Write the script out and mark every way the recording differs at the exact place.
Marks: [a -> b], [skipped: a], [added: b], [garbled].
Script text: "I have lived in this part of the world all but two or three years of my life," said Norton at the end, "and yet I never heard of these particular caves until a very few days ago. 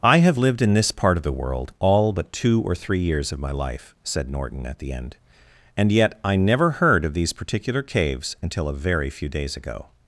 "I have lived in this part of the world all but two or three years of my life," said Norton at the end, "and yet I never heard of these particular caves until a very few days ago.